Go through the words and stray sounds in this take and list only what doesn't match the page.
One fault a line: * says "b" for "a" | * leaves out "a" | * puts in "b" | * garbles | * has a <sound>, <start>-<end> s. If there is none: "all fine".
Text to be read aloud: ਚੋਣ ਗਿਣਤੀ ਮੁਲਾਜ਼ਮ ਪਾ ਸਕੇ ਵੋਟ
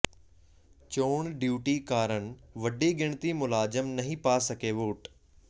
* puts in "ਡਿਊਟੀ ਕਾਰਨ ਵੱਡੀ"
* puts in "ਨਹੀਂ"